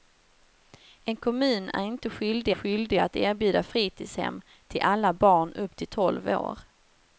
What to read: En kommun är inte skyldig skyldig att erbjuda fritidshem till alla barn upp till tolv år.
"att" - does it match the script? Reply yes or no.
yes